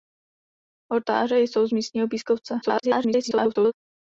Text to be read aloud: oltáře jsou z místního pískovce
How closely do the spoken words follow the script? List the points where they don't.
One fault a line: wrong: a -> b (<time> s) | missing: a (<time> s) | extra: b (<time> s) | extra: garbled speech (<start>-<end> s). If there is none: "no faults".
extra: garbled speech (2.6-3.7 s)